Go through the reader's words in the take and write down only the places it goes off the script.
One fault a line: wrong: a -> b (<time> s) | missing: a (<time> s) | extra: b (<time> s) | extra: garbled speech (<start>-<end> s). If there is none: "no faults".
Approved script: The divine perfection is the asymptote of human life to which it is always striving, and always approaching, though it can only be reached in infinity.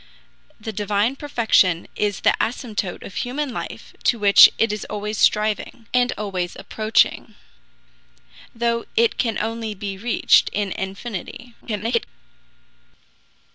extra: garbled speech (11.6-12.1 s)